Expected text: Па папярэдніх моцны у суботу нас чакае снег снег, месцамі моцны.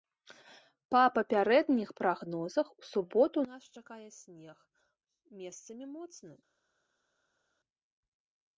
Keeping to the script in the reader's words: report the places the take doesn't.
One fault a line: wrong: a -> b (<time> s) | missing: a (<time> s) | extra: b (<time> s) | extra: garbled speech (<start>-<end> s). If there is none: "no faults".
wrong: моцны -> прагнозах (2.0 s)
missing: снег (4.6 s)